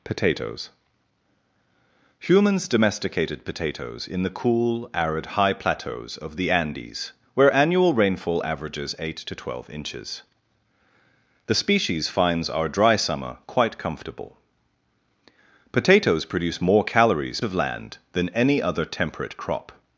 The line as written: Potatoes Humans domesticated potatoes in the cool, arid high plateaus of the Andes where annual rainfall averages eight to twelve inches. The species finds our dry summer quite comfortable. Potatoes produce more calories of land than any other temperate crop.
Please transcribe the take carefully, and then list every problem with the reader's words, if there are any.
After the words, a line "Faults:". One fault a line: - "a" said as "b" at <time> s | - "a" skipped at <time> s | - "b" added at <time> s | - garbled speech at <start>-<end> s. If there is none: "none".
Potatoes Humans domesticated potatoes in the cool, arid high plateaus of the Andes where annual rainfall averages eight to twelve inches. The species finds our dry summer quite comfortable. Potatoes produce more calories of land than any other temperate crop.
Faults:
none